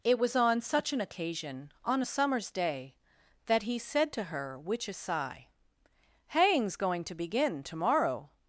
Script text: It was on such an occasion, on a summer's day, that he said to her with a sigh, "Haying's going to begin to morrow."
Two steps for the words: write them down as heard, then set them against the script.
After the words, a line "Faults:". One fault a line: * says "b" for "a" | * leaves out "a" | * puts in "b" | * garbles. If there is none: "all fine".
It was on such an occasion, on a summer's day, that he said to her which a sigh, "Haying's going to begin to morrow."
Faults:
* says "which" for "with"